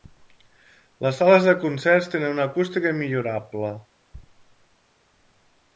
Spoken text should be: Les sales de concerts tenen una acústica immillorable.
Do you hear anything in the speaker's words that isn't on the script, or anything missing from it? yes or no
no